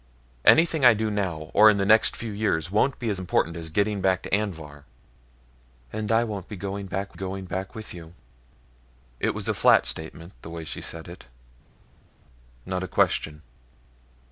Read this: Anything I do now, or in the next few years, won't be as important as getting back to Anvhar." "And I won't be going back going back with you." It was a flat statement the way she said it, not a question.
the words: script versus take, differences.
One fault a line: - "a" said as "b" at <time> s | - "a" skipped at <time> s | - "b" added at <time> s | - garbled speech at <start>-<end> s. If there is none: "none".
none